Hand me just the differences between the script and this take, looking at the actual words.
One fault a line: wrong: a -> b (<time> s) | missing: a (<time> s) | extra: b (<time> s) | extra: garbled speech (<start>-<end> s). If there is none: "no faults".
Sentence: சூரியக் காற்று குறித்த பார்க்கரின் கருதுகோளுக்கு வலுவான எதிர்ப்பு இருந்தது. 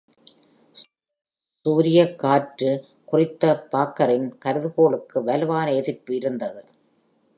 no faults